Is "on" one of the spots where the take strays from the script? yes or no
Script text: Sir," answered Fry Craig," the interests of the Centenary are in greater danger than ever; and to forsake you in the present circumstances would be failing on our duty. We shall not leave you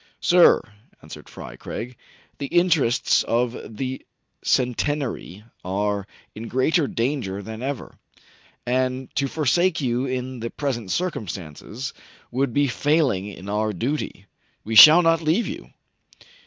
yes